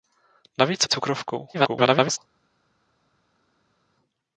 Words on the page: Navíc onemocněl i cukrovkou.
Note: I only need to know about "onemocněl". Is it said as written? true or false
false